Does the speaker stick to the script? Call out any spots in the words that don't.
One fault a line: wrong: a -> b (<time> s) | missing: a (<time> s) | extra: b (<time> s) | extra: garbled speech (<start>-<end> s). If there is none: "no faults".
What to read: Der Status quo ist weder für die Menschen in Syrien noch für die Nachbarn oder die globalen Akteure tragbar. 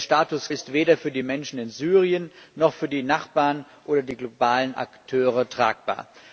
missing: quo (0.5 s)